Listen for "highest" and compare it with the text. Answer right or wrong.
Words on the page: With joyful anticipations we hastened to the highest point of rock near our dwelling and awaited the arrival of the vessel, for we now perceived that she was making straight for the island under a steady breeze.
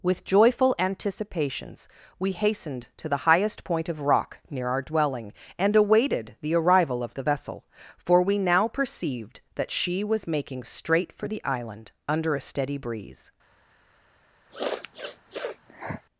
right